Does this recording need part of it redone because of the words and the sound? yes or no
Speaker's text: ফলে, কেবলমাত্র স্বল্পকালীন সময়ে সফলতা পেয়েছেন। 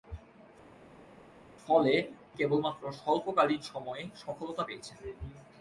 no